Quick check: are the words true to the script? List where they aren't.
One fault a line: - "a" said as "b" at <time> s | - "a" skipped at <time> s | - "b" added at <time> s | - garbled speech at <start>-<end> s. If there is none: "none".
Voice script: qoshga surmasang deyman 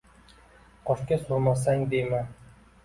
none